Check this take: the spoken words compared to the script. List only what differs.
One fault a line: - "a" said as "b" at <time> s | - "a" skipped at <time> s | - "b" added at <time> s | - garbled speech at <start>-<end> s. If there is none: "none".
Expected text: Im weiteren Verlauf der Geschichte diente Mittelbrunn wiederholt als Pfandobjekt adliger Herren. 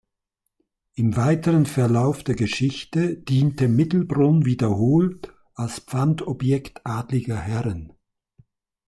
none